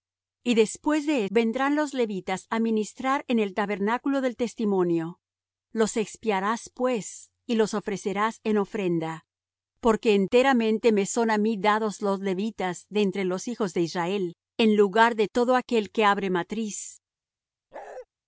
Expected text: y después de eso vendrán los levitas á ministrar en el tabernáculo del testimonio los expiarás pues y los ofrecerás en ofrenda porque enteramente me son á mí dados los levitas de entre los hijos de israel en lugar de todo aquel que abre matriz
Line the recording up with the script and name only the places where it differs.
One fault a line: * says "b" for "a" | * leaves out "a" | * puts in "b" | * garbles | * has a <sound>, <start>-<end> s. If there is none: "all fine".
* leaves out "eso"
* has a bark, 17.7-18.1 s